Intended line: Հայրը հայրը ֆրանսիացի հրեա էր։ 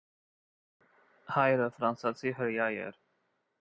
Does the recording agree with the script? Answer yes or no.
no